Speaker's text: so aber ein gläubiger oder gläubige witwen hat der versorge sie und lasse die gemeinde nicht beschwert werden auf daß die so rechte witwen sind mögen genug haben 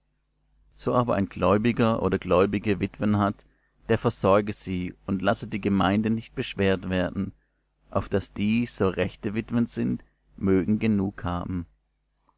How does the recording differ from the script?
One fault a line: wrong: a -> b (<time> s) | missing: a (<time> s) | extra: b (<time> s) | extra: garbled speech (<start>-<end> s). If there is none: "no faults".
no faults